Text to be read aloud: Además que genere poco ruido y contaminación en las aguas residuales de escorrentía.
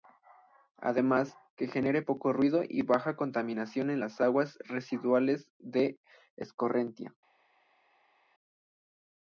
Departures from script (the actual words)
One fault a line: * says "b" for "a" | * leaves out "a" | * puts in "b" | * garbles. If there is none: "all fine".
* puts in "baja"